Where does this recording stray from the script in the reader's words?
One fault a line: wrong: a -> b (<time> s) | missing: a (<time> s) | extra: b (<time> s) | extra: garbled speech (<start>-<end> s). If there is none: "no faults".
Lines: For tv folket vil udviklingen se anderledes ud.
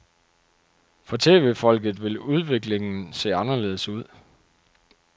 no faults